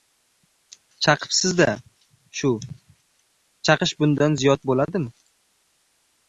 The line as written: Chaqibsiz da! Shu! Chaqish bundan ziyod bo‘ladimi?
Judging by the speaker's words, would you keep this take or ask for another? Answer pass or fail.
pass